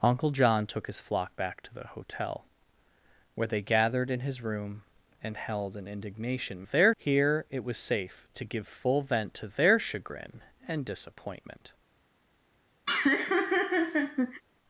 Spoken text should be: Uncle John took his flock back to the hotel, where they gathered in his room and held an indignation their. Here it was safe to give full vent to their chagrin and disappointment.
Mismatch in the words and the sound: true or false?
true